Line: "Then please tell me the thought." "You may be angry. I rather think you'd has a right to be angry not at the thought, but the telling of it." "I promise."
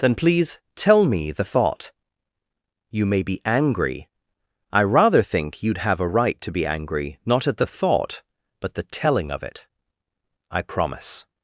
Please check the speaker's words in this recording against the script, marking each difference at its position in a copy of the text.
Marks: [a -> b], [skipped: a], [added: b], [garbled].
"Then please tell me the thought." "You may be angry. I rather think you'd [has -> have] a right to be angry not at the thought, but the telling of it." "I promise."